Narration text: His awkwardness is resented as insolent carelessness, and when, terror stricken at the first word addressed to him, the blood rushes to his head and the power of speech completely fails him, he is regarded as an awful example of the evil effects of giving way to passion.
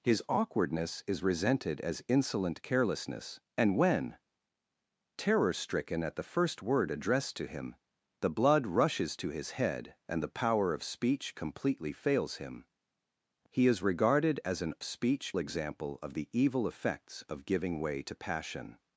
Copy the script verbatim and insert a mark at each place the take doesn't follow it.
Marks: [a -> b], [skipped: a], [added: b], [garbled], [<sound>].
His awkwardness is resented as insolent carelessness, and when, terror stricken at the first word addressed to him, the blood rushes to his head and the power of speech completely fails him, he is regarded as an [awful -> speech] example of the evil effects of giving way to passion.